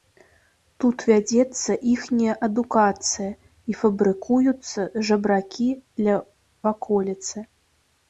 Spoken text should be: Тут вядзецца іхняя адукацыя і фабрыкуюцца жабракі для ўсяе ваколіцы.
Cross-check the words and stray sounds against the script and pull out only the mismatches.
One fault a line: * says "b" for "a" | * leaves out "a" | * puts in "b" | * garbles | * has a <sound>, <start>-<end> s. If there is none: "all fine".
* leaves out "ўсяе"